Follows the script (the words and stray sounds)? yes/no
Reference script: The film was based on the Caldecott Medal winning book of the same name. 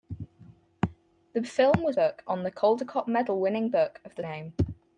no